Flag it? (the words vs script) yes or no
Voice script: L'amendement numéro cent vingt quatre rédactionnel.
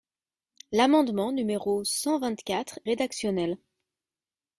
no